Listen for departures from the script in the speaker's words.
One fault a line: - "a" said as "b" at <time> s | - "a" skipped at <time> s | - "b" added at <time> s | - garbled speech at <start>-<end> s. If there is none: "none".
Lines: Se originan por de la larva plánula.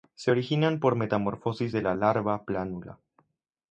- "metamorfosis" added at 1.0 s